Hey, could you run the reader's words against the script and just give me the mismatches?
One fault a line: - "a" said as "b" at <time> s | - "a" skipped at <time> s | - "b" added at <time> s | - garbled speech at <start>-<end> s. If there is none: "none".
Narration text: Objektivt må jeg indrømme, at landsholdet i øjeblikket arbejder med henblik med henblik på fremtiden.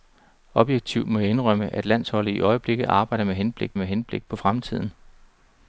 none